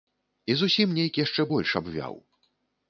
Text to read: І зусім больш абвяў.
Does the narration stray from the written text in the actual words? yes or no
yes